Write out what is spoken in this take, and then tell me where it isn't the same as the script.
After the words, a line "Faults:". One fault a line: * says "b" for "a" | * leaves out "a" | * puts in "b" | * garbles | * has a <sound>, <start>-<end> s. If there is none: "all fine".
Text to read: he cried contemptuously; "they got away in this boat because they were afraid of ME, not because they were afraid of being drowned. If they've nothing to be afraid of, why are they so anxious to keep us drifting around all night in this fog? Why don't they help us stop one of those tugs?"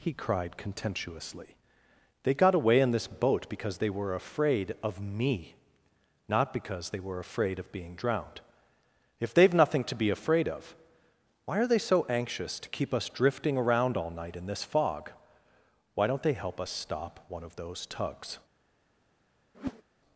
he cried contemptuously; "they got away in this boat because they were afraid of ME, not because they were afraid of being drowned. If they've nothing to be afraid of, why are they so anxious to keep us drifting around all night in this fog? Why don't they help us stop one of those tugs?"
Faults:
* has a whoosh, 19.5-19.8 s